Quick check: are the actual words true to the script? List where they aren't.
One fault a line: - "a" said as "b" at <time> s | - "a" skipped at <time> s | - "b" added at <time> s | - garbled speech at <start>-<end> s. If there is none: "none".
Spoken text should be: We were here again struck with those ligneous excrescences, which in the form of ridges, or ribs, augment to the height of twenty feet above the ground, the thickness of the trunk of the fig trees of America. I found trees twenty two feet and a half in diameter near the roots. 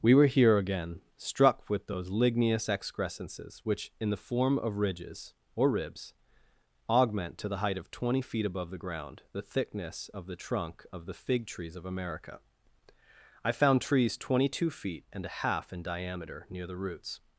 none